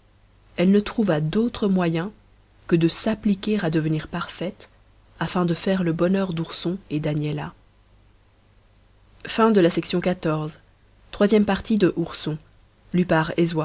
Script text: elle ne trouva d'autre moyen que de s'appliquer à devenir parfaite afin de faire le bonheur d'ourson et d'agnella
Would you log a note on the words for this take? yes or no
no